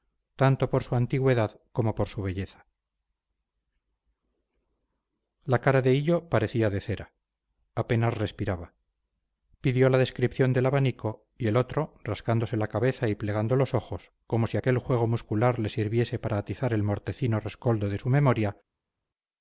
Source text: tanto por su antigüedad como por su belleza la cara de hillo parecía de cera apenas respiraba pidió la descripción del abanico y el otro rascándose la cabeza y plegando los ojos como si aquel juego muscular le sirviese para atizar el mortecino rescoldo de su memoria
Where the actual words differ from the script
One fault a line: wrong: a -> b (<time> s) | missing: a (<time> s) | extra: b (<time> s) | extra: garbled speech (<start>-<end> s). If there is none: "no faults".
no faults